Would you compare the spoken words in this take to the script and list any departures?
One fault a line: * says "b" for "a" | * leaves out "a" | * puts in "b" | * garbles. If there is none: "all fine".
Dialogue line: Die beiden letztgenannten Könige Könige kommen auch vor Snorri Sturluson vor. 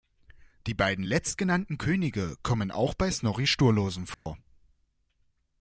* leaves out "Könige"
* says "bei" for "vor"